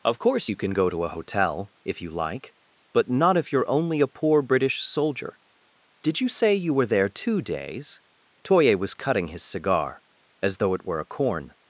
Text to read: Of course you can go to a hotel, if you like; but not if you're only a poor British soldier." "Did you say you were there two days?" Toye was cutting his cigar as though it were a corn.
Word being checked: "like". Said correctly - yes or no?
yes